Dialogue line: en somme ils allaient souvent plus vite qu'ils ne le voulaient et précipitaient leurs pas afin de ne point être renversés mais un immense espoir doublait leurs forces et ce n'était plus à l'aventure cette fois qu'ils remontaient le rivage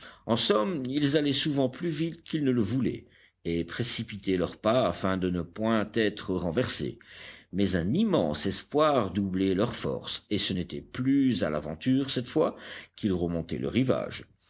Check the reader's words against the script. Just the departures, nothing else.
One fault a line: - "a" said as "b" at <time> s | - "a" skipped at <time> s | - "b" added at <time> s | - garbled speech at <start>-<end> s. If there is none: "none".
none